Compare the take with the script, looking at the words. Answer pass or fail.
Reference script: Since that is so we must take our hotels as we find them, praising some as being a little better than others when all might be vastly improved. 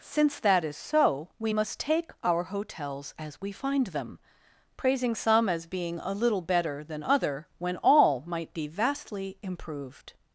fail